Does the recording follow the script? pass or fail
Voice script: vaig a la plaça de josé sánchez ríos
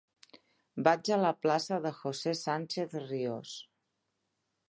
pass